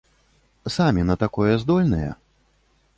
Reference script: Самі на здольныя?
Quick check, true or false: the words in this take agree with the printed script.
false